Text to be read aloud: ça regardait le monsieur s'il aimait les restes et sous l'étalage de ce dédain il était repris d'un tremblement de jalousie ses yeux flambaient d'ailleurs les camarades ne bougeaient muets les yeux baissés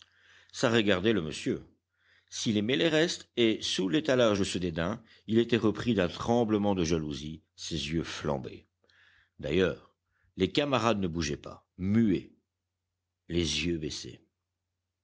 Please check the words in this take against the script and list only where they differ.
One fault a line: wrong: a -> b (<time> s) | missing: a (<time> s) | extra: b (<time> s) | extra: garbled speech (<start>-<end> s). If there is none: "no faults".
extra: pas (11.4 s)